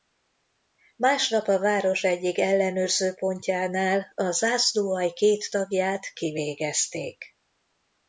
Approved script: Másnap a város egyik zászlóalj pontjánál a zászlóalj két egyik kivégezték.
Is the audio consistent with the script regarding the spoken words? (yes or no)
no